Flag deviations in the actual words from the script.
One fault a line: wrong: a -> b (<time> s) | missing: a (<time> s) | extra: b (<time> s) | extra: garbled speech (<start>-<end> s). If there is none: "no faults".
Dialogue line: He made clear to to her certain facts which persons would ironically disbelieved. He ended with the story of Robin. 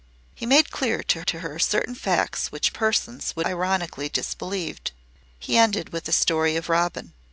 no faults